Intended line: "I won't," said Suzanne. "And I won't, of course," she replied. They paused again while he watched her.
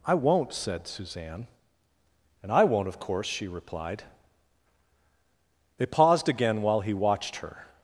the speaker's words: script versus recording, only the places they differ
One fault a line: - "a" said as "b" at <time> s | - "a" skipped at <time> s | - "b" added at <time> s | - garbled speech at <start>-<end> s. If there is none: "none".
none